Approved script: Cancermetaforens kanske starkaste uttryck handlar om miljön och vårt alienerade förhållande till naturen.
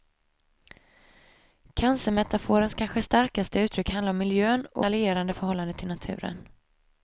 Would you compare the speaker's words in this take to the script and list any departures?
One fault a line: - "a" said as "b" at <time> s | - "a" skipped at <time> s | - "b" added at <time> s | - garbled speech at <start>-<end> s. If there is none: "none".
- "vårt" skipped at 4.8 s